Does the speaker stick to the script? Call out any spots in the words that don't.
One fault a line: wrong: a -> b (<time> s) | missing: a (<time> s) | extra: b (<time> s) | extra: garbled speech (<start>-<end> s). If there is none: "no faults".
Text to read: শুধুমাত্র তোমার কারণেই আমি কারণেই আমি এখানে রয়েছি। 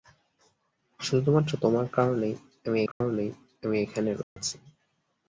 no faults